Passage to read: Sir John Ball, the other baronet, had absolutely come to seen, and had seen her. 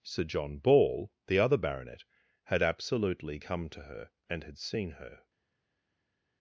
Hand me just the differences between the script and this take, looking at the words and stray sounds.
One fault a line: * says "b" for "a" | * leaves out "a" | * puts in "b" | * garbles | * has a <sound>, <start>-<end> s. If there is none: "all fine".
* says "her" for "seen"